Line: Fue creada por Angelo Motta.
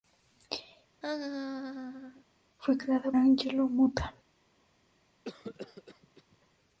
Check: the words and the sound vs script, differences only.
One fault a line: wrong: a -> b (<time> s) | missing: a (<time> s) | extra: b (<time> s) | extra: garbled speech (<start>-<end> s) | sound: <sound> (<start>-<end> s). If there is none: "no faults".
sound: laugh (1.0-2.3 s)
missing: por (3.1 s)
sound: cough (5.2-6.4 s)